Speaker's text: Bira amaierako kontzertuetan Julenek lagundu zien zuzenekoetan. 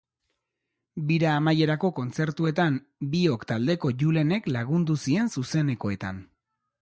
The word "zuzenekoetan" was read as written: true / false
true